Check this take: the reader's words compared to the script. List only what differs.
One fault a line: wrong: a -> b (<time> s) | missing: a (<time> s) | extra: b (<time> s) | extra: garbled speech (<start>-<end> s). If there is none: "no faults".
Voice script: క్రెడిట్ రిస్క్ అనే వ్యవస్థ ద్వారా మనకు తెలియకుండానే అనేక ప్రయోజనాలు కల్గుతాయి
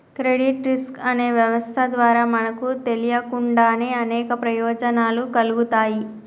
no faults